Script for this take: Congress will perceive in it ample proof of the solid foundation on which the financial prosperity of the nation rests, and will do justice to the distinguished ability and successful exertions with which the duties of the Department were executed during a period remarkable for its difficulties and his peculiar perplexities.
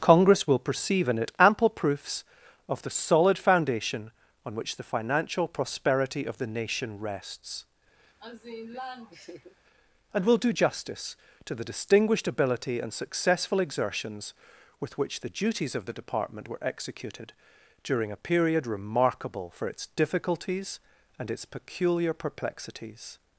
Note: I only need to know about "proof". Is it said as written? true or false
false